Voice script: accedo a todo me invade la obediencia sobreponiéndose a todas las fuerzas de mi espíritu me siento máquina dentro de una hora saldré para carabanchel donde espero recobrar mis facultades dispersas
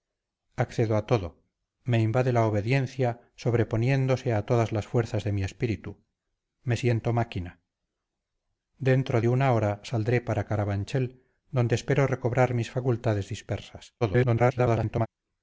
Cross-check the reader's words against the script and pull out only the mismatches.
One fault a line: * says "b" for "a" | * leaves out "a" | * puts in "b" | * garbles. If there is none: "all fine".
* garbles